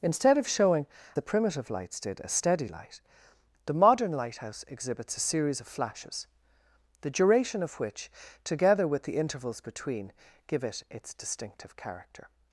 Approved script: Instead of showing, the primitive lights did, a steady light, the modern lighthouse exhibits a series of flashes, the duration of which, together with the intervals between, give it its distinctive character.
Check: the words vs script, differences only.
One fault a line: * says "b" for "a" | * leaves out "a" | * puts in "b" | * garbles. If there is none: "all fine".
all fine